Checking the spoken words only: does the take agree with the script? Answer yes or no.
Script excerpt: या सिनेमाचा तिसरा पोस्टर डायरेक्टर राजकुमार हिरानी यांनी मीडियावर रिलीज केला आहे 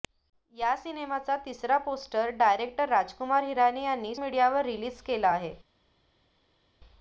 yes